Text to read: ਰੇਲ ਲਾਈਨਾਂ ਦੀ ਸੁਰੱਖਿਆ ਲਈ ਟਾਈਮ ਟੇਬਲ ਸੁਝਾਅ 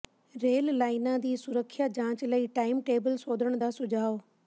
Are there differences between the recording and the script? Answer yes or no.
yes